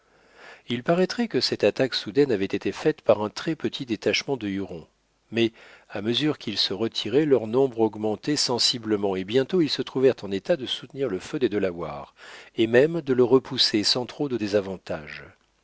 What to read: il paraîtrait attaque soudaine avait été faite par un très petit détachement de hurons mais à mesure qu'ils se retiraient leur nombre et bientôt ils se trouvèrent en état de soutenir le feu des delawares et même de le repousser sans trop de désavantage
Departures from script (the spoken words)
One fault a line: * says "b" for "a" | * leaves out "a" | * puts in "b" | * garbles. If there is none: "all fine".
* puts in "que cette"
* puts in "augmentait sensiblement"